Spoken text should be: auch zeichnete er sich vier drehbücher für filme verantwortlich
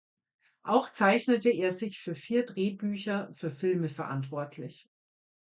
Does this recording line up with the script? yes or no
no